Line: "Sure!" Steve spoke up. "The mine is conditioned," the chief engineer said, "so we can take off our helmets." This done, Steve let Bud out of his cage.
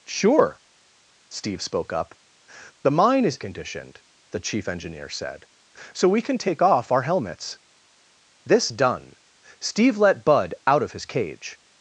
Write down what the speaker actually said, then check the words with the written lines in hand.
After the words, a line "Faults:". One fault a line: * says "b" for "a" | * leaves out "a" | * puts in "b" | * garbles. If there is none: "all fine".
"Sure!" Steve spoke up. "The mine is conditioned," the chief engineer said, "so we can take off our helmets." This done, Steve let Bud out of his cage.
Faults:
all fine